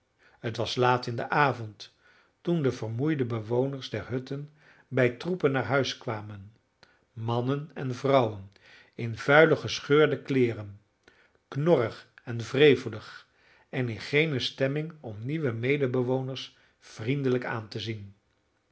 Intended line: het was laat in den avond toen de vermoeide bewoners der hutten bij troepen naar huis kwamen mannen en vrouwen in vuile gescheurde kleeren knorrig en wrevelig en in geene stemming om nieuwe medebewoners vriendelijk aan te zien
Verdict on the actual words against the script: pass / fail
pass